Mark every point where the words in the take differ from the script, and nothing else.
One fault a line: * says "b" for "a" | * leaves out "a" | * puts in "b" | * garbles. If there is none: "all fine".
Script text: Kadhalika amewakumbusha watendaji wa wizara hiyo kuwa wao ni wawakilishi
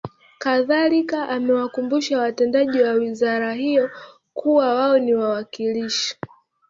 all fine